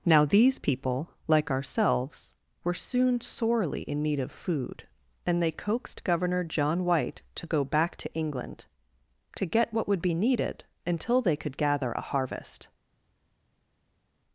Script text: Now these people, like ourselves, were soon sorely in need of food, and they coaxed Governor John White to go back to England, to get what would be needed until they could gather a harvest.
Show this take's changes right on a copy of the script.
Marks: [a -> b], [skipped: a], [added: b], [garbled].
Now these people, like ourselves, were soon sorely in need of food, and they coaxed Governor John White to go back to England, to get what would be needed until they could gather a harvest.